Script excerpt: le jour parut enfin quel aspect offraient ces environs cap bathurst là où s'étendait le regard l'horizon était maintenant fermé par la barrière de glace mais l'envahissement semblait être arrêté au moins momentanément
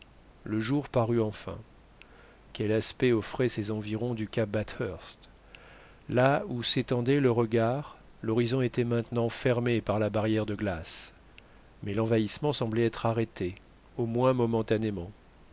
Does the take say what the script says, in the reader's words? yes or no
no